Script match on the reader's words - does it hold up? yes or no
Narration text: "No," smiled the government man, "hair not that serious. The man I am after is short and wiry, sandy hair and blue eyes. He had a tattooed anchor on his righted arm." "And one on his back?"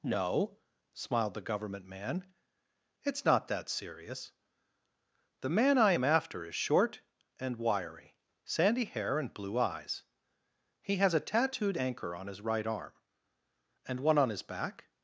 no